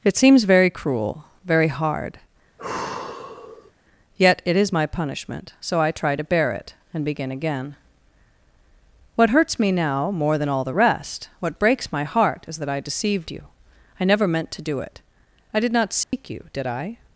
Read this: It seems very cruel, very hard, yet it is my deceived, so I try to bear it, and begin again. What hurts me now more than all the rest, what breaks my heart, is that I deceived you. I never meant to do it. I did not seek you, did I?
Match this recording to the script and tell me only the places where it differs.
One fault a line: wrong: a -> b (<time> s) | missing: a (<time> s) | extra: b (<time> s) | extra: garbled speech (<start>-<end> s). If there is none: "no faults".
wrong: deceived -> punishment (4.9 s)